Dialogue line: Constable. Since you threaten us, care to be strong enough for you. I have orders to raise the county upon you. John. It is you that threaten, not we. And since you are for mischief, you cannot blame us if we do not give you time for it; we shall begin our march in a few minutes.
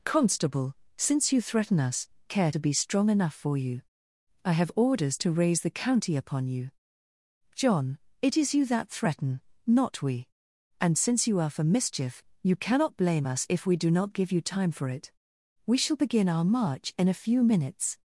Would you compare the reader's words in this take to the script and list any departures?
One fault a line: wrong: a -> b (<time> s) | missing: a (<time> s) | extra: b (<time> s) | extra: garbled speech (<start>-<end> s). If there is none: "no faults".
no faults